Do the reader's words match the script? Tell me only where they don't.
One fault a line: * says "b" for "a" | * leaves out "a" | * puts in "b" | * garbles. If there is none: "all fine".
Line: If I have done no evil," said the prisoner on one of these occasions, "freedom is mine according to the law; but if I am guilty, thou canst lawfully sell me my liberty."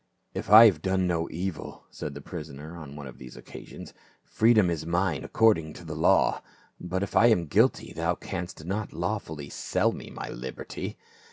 * puts in "not"